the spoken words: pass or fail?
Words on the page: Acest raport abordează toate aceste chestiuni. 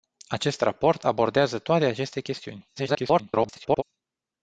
fail